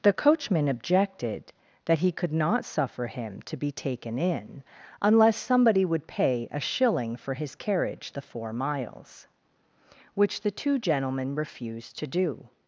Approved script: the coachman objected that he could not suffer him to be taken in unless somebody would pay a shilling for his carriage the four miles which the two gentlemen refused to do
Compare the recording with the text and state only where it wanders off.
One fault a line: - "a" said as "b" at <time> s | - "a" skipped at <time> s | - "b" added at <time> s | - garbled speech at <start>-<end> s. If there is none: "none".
none